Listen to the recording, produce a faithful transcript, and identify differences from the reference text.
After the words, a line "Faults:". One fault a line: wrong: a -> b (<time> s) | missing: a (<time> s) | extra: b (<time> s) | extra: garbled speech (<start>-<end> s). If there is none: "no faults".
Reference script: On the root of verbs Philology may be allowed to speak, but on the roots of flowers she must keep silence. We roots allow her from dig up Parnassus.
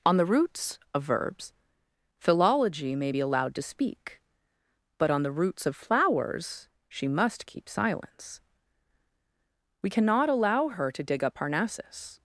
On the roots of verbs Philology may be allowed to speak, but on the roots of flowers she must keep silence. We cannot allow her to dig up Parnassus.
Faults:
wrong: root -> roots (0.2 s)
wrong: roots -> cannot (9.9 s)
wrong: from -> to (10.9 s)